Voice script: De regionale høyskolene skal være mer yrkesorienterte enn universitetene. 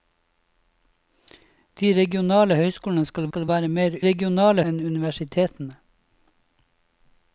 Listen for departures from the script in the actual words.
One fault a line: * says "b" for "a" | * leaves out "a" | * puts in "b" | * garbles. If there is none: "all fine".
* puts in "skal"
* says "regionale" for "yrkesorienterte"